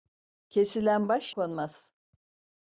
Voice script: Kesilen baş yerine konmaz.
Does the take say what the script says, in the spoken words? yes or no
no